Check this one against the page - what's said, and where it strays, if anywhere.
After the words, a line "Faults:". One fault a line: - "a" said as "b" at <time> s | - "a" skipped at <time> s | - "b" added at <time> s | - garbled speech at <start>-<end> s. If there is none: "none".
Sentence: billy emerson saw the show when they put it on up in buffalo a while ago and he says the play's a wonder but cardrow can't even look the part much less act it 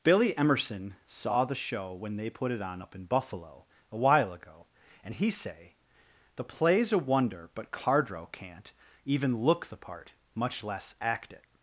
billy emerson saw the show when they put it on up in buffalo a while ago and he say the play's a wonder but cardrow can't even look the part much less act it
Faults:
- "says" said as "say" at 5.3 s